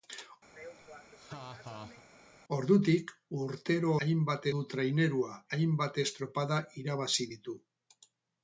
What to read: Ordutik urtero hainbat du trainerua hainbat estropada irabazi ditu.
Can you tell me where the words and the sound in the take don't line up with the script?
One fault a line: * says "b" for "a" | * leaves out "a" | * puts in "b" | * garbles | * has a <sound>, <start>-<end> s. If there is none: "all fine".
* has a laugh, 0.5-2.0 s